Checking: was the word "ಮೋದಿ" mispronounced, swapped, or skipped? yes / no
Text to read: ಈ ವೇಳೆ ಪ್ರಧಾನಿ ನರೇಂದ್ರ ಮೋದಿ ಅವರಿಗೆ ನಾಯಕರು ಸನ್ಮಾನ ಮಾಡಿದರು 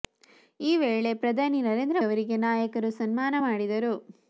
yes